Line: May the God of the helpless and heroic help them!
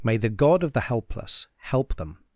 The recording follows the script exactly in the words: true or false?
false